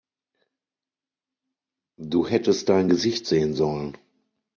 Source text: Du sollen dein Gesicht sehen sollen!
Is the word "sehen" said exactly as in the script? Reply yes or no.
yes